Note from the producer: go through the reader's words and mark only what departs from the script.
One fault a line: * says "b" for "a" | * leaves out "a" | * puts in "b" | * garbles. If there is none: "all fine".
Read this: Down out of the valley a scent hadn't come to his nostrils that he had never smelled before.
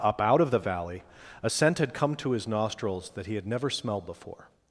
* says "Up" for "Down"
* says "had" for "hadn't"